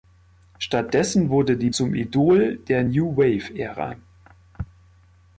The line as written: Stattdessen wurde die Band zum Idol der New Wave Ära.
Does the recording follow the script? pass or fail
fail